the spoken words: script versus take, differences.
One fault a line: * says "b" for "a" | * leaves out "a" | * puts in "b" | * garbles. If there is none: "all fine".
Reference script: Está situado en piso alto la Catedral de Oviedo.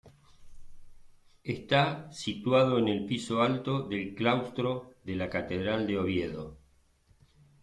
* puts in "el"
* puts in "del claustro de"